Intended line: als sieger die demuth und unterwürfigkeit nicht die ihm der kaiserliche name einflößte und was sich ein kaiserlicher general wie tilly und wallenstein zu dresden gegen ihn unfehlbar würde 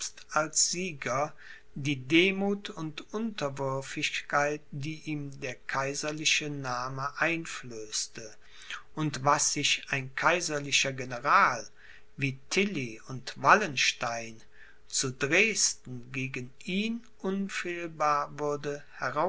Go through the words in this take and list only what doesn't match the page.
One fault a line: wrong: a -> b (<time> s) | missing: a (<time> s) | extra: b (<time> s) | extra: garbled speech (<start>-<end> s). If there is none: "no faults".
missing: nicht (4.6 s)